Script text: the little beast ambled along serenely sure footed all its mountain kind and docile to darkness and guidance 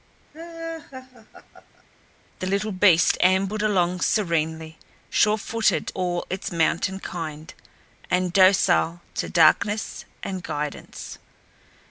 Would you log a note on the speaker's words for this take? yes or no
no